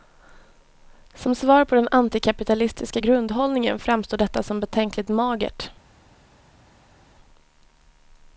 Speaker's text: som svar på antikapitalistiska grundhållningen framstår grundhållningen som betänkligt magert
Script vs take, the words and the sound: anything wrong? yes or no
yes